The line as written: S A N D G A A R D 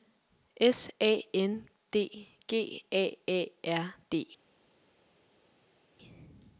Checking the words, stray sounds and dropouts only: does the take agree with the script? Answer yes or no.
yes